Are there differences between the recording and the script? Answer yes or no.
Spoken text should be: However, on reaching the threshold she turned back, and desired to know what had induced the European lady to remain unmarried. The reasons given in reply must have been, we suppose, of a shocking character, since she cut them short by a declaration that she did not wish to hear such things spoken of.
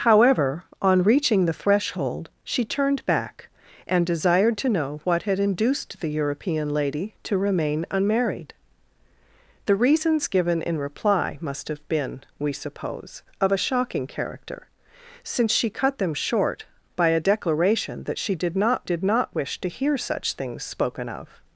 yes